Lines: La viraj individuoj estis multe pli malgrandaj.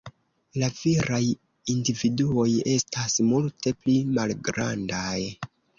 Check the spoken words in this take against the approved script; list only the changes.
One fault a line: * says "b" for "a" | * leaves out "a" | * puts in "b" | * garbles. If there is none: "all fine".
* says "estas" for "estis"